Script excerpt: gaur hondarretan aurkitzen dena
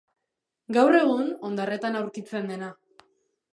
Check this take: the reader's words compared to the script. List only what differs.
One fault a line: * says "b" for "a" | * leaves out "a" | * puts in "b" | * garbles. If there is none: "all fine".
* puts in "egun"